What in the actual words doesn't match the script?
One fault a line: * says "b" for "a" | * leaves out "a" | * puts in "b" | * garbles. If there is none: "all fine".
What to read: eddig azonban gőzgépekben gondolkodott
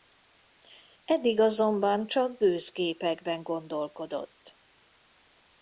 * puts in "csak"